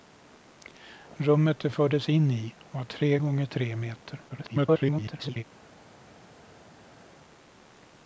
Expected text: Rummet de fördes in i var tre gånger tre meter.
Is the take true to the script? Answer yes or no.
no